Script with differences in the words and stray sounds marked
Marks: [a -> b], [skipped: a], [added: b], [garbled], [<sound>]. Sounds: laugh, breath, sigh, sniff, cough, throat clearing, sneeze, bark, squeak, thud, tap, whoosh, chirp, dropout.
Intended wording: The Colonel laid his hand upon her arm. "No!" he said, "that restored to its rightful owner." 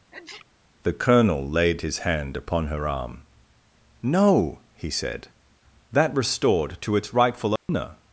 [sneeze] The Colonel laid his hand upon her arm. "No!" he said, "that restored to its rightful owner." [dropout]